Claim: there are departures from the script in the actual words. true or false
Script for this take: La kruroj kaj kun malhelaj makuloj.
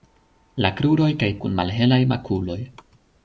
false